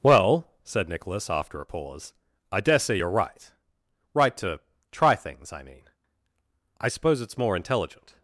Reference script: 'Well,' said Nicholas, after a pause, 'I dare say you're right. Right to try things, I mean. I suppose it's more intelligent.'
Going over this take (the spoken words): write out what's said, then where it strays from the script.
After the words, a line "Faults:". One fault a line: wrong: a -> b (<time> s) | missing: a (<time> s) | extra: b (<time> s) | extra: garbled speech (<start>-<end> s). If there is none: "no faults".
'Well,' said Nicholas, after a pause, 'I dare say you're right. Right to try things, I mean. I suppose it's more intelligent.'
Faults:
no faults